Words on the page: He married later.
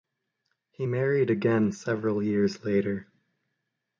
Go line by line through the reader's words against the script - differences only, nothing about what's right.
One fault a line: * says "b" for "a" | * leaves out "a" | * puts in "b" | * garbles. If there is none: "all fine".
* puts in "again several years"